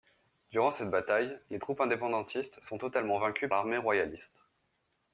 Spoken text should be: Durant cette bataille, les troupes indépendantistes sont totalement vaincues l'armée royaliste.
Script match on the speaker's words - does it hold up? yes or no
yes